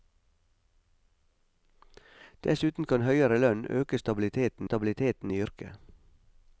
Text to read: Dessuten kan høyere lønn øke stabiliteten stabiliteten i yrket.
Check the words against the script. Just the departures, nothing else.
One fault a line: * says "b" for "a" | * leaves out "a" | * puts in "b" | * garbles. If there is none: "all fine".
all fine